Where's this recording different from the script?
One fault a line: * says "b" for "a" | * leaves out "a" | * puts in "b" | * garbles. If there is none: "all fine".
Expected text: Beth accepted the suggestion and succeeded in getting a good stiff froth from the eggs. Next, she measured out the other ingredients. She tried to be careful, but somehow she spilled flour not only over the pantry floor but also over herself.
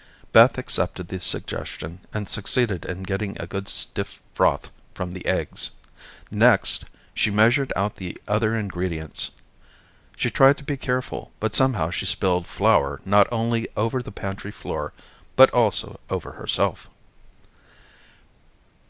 all fine